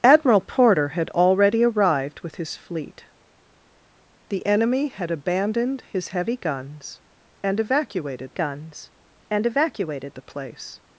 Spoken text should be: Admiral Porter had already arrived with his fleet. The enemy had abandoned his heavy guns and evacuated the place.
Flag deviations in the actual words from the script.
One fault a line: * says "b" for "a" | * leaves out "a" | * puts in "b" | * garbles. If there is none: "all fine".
* puts in "guns and evacuated"